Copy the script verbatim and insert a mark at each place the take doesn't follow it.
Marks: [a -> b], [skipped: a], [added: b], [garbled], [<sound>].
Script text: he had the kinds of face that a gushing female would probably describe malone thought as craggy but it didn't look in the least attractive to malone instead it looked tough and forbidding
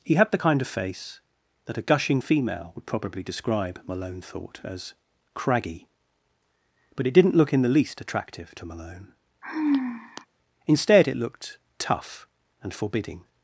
he had the [kinds -> kind] of face that a gushing female would probably describe malone thought as craggy but it didn't look in the least attractive to malone [sigh] instead it looked tough and forbidding